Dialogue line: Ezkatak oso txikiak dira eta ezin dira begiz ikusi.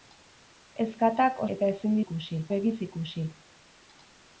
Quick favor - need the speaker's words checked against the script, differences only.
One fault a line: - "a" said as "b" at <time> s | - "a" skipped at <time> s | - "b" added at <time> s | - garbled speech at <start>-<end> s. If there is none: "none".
- "oso txikiak dira" skipped at 1.4 s
- "dira" said as "ikusi" at 2.1 s